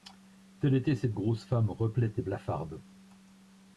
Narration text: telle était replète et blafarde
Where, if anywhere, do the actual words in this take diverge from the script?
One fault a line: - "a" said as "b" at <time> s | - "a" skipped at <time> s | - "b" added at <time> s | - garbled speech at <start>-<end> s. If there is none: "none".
- "cette grosse femme" added at 0.9 s